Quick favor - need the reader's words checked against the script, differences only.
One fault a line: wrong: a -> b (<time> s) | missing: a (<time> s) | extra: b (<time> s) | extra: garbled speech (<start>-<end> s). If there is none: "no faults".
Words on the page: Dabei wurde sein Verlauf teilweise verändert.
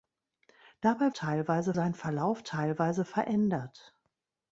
wrong: wurde -> teilweise (1.1 s)